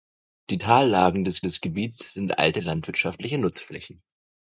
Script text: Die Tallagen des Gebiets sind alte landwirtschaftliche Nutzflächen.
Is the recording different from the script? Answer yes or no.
yes